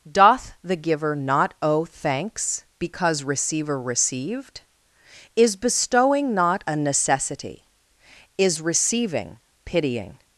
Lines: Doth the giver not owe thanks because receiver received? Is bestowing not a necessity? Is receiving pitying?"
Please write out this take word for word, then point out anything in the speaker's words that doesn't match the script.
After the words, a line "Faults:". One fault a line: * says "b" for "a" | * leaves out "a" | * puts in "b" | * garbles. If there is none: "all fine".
Doth the giver not owe thanks because receiver received? Is bestowing not a necessity? Is receiving pitying?"
Faults:
all fine